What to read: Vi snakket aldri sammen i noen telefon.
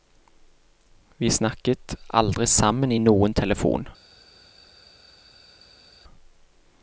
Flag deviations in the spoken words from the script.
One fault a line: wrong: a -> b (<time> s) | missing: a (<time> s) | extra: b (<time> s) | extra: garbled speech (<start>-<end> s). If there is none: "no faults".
no faults